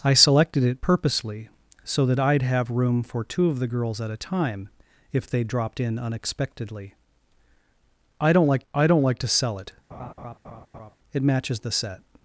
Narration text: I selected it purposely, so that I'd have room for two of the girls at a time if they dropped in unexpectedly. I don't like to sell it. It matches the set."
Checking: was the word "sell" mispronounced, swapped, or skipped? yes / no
no